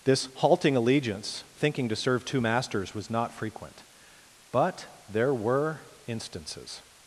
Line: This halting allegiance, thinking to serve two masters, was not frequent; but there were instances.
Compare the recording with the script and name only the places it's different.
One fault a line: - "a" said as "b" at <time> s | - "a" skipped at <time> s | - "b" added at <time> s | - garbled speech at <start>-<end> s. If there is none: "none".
none